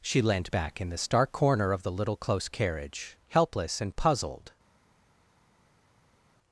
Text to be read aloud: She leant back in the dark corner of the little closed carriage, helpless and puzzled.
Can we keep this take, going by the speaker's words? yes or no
no